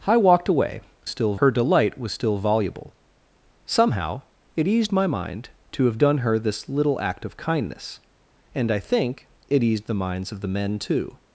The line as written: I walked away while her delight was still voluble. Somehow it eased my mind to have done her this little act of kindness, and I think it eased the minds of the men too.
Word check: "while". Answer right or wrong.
wrong